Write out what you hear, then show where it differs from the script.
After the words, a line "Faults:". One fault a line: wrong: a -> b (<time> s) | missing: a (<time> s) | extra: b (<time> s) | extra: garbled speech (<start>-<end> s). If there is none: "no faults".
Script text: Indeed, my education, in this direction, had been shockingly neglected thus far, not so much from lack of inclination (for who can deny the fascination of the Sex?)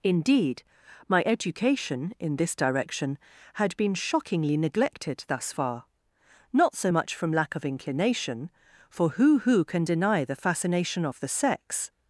Indeed, my education, in this direction, had been shockingly neglected thus far, not so much from lack of inclination (for who who can deny the fascination of the Sex?)
Faults:
extra: who (9.4 s)